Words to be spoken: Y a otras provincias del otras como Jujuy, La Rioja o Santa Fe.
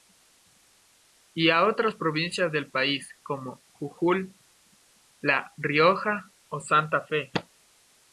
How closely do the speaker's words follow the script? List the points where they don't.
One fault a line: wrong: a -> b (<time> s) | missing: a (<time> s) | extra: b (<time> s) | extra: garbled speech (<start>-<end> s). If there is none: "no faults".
wrong: otras -> país (2.7 s)